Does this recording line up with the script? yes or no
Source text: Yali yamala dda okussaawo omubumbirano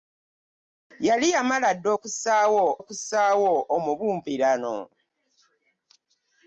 no